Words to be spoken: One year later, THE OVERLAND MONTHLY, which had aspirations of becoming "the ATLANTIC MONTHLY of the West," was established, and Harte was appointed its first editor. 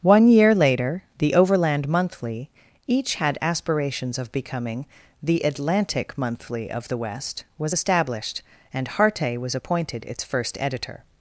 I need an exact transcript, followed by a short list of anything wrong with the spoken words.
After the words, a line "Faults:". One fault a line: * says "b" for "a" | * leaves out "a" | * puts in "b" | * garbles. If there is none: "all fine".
One year later, THE OVERLAND MONTHLY, each had aspirations of becoming "the ATLANTIC MONTHLY of the West," was established, and Harte was appointed its first editor.
Faults:
* says "each" for "which"